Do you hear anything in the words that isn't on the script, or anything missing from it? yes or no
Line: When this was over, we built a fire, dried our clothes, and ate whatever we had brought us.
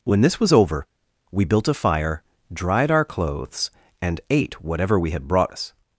no